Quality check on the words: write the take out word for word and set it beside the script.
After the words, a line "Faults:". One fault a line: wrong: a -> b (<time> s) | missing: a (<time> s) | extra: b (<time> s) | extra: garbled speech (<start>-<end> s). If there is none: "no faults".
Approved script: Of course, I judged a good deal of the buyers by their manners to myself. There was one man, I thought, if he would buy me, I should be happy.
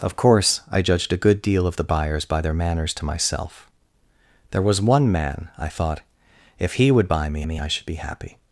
Of course, I judged a good deal of the buyers by their manners to myself. There was one man, I thought, if he would buy me me, I should be happy.
Faults:
extra: me (7.4 s)